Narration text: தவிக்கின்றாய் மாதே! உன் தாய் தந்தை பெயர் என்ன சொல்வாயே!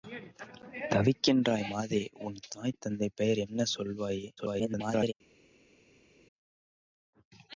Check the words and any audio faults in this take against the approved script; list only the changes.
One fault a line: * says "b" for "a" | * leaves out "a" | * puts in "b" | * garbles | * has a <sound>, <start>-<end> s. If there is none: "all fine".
* garbles